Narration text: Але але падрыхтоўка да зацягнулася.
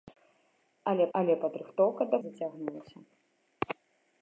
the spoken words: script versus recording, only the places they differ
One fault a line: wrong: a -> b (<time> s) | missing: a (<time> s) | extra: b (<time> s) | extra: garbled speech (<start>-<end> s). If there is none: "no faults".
no faults